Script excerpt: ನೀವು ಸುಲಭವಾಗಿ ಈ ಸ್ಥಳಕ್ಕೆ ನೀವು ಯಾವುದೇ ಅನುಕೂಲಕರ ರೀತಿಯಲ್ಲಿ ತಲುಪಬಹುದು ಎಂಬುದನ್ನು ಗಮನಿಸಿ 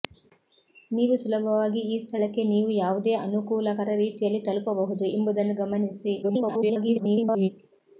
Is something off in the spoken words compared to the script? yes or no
yes